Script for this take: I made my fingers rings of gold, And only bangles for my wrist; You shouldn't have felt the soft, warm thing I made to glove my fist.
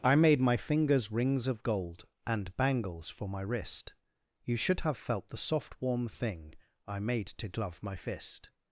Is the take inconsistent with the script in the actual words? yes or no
yes